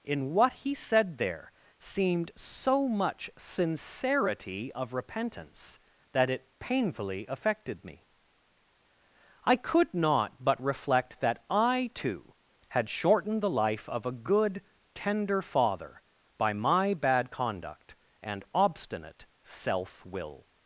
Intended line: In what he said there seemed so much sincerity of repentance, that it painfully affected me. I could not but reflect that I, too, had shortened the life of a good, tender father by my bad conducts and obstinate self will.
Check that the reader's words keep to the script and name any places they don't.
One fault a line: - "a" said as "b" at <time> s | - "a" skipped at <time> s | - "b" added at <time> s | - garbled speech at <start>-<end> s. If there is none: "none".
- "conducts" said as "conduct" at 17.3 s